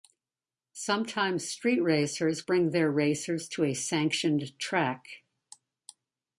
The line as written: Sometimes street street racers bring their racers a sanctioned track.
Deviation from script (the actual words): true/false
true